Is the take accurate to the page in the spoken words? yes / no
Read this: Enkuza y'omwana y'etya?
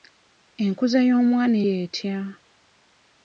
yes